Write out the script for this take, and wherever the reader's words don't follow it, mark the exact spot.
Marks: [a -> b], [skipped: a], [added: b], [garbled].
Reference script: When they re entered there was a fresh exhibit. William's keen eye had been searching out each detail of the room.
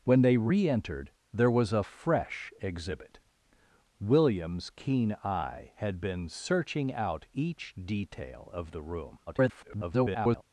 When they re entered there was a fresh exhibit. William's keen eye had been searching out each detail of the room. [garbled]